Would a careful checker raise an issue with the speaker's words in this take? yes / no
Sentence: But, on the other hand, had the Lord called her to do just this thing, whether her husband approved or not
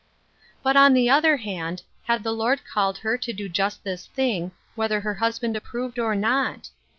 no